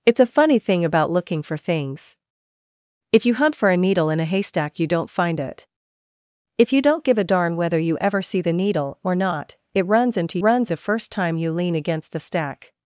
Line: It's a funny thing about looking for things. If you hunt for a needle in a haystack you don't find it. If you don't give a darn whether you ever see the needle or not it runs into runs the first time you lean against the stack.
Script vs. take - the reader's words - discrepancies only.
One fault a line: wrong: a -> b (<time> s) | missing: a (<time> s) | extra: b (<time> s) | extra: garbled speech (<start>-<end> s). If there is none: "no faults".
no faults